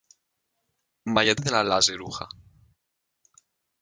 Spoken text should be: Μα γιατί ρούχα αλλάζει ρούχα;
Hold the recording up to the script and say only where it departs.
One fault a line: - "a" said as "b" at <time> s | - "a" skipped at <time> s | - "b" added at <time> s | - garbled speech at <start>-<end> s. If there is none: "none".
- "ρούχα" said as "δεν" at 1.4 s